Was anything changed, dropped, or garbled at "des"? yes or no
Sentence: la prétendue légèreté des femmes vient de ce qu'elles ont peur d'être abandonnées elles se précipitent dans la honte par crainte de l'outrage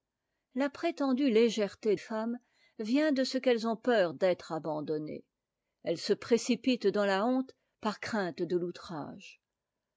yes